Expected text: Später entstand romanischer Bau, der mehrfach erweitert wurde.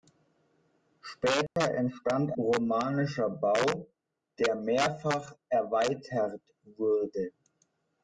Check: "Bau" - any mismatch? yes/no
no